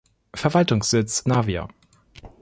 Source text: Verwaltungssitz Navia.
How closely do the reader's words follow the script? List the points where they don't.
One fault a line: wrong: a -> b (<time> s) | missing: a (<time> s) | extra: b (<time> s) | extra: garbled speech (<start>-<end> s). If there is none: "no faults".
no faults